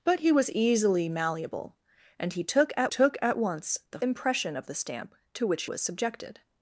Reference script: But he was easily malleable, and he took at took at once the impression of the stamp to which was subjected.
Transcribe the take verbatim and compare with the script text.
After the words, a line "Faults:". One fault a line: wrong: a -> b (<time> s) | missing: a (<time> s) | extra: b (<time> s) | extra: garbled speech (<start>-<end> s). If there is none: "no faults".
But he was easily malleable, and he took at took at once the impression of the stamp to which was subjected.
Faults:
no faults